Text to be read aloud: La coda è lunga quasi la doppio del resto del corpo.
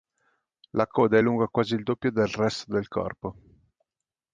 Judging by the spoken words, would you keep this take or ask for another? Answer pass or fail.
fail